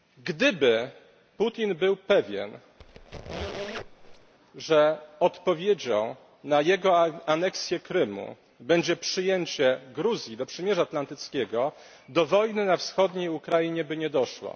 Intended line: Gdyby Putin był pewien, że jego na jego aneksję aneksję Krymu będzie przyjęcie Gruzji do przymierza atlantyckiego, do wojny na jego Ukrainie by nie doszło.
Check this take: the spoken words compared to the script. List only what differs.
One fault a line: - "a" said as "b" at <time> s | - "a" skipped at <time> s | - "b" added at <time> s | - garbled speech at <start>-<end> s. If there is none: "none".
- "jego" said as "odpowiedzią" at 5.2 s
- "aneksję" skipped at 7.8 s
- "jego" said as "wschodniej" at 12.8 s